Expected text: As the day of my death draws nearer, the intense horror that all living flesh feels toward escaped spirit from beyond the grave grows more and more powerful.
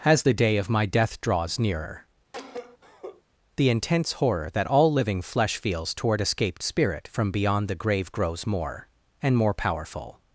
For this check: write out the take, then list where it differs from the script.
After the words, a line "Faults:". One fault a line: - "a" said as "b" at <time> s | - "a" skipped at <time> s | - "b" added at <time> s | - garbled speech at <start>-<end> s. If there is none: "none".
As the day of my death draws nearer, the intense horror that all living flesh feels toward escaped spirit from beyond the grave grows more and more powerful.
Faults:
none